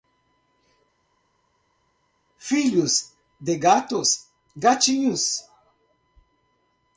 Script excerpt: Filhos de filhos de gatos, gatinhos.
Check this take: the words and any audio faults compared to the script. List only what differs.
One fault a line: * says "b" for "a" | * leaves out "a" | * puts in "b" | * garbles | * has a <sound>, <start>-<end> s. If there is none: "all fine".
* leaves out "filhos de"